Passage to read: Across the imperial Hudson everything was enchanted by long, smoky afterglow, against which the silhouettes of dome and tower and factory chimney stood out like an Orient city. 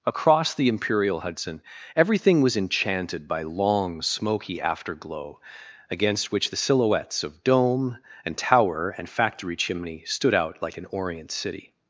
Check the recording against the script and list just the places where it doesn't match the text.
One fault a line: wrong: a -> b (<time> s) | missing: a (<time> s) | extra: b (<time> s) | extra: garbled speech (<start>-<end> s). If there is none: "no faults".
no faults